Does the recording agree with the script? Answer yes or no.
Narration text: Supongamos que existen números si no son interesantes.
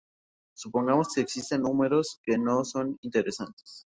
no